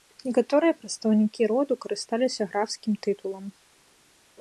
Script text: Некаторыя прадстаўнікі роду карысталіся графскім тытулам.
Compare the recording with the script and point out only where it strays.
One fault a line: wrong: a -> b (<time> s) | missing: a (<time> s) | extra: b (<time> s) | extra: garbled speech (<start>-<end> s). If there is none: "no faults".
no faults